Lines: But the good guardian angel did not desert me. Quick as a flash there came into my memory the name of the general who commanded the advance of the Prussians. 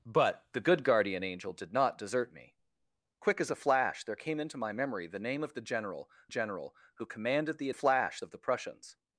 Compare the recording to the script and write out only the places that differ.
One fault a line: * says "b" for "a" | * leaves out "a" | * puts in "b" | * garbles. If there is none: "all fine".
* puts in "general"
* says "flash" for "advance"